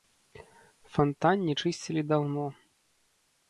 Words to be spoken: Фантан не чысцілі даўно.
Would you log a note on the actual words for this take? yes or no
no